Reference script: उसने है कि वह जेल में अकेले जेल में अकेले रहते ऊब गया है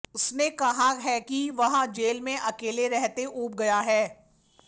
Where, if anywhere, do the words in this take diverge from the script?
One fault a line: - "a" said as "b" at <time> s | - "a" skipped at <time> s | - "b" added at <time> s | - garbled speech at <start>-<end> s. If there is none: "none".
- "कहा" added at 0.5 s
- "जेल में अकेले" skipped at 2.9 s